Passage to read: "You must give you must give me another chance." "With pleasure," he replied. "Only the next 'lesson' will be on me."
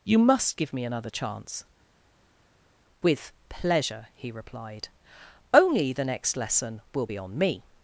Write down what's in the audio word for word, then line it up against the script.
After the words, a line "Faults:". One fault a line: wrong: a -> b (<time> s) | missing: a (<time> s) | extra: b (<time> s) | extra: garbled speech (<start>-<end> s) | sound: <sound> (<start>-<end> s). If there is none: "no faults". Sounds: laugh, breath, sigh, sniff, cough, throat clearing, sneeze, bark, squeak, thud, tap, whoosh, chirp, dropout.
"You must give me another chance." "With pleasure," he replied. "Only the next 'lesson' will be on me."
Faults:
missing: you must give (0.7 s)